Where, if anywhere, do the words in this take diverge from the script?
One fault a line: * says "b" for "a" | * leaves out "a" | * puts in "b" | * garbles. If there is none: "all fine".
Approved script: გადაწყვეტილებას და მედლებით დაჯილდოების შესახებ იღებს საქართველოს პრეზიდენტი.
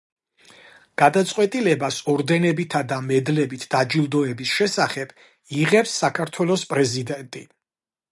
* puts in "ორდენებითა"